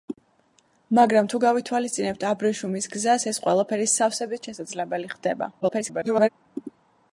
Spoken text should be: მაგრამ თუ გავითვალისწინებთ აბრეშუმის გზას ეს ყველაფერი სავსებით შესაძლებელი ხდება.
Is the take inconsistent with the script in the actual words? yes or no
yes